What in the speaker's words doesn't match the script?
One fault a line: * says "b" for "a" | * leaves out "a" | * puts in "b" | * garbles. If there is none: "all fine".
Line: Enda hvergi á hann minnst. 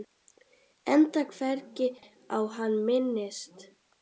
all fine